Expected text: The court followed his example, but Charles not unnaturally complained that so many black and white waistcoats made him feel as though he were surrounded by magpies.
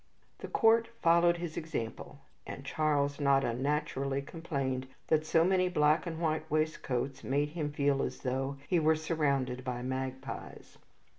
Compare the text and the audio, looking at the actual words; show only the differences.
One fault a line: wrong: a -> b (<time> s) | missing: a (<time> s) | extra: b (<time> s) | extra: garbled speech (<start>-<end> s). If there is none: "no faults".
wrong: but -> and (2.5 s)